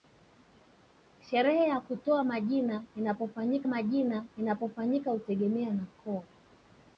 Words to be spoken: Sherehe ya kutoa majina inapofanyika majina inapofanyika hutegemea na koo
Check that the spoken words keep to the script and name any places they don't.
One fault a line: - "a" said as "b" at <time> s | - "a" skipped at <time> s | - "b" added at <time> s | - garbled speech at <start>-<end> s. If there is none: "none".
none